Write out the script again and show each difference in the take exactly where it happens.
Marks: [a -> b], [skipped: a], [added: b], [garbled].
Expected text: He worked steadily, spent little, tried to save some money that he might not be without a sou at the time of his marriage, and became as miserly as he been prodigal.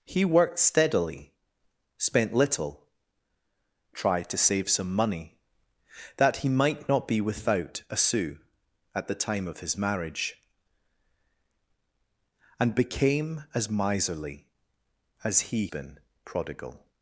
He worked steadily, spent little, tried to save some money that he might not be without a sou at the time of his marriage, and became as miserly as he been prodigal.